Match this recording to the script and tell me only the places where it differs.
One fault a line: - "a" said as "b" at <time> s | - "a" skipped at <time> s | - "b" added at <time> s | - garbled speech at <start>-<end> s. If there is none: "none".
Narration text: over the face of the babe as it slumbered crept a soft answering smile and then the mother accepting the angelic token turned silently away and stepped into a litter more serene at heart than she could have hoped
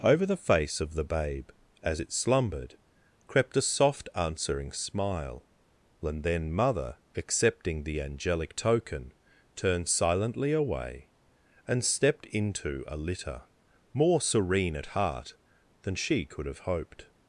- "the" skipped at 6.5 s